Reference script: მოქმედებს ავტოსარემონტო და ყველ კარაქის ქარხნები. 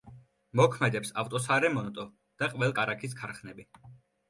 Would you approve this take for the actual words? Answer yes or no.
yes